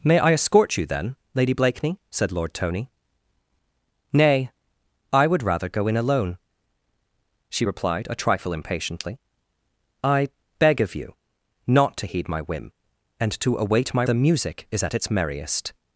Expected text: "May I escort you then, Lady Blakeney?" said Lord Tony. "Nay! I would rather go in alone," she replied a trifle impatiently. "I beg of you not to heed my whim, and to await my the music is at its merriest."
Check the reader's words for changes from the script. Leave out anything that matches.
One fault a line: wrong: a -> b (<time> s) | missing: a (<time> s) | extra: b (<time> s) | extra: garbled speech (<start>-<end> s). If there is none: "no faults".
no faults